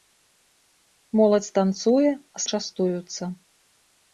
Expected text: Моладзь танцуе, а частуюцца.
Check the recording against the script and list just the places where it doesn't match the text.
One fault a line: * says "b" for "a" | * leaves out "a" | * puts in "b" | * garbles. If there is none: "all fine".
all fine